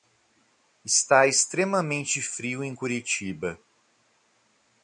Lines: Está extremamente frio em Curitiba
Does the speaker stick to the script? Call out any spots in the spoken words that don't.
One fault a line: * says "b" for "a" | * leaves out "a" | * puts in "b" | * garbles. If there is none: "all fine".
all fine